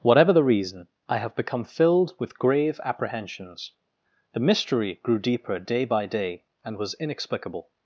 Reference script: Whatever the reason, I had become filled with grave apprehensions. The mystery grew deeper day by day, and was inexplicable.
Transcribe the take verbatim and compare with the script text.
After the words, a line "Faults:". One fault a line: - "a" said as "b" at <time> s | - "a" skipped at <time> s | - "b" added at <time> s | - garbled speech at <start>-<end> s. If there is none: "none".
Whatever the reason, I have become filled with grave apprehensions. The mystery grew deeper day by day, and was inexplicable.
Faults:
- "had" said as "have" at 1.2 s